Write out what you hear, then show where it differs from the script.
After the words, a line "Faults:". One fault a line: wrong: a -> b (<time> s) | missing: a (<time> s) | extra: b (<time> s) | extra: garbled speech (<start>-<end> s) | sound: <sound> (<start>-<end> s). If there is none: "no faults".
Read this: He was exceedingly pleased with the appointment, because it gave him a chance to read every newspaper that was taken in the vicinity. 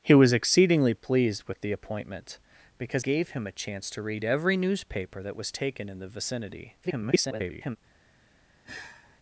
He was exceedingly pleased with the appointment, because gave him a chance to read every newspaper that was taken in the vicinity. [garbled]
Faults:
missing: it (3.0 s)
extra: garbled speech (6.8-7.8 s)
sound: sigh (8.6-9.2 s)